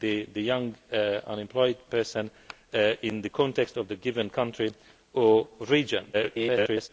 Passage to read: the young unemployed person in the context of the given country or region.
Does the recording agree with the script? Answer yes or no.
no